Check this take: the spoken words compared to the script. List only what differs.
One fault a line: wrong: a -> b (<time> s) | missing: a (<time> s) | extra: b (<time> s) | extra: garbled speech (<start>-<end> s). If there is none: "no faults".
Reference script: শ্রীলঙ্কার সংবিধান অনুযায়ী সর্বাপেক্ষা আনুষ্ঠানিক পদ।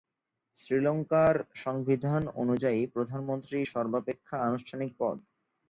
extra: প্রধানমন্ত্রী (2.9 s)